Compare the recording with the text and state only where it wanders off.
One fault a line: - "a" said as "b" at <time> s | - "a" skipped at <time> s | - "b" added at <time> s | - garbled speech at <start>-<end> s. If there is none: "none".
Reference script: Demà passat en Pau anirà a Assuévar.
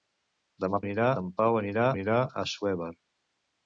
- "passat" said as "anirà" at 0.9 s
- "anirà" added at 2.0 s